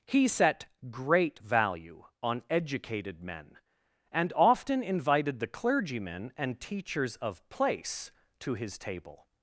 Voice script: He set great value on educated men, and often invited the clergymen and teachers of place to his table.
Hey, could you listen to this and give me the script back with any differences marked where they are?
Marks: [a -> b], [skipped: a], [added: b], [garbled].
He set great value on educated men, and often invited the clergymen and teachers of place to his table.